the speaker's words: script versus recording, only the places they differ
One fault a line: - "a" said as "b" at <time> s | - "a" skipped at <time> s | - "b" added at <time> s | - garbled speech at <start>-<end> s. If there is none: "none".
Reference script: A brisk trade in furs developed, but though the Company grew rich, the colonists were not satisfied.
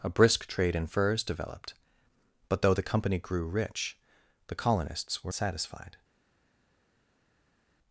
- "not" skipped at 5.3 s